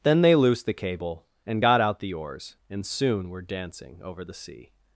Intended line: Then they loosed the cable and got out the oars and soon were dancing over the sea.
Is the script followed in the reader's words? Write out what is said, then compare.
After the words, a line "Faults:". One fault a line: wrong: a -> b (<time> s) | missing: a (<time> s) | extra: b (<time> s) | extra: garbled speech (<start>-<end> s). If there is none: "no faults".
Then they loosed the cable and got out the oars and soon were dancing over the sea.
Faults:
no faults